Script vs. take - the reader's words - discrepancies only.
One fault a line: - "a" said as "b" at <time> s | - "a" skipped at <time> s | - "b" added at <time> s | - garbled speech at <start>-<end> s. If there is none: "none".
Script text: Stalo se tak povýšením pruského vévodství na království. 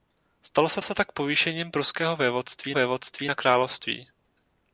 - "se" added at 0.8 s
- "vévodství" added at 2.7 s